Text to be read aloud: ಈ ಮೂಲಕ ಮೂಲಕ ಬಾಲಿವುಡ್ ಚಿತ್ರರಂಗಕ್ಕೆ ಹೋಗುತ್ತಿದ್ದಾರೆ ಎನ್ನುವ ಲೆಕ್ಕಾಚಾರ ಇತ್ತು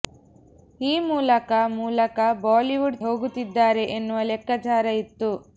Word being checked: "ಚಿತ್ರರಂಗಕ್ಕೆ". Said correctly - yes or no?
no